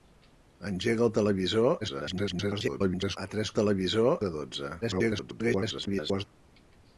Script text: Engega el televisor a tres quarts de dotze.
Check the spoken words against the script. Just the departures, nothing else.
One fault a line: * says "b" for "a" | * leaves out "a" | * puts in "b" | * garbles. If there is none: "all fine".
* garbles
* says "televisor" for "quarts"
* garbles